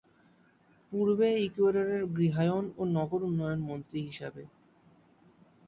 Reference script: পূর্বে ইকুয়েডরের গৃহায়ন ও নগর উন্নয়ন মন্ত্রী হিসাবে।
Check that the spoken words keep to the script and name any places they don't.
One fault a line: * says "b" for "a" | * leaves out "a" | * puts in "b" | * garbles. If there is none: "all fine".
all fine